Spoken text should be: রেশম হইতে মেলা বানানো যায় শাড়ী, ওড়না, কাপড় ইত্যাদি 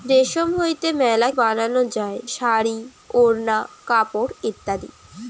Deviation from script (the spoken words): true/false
false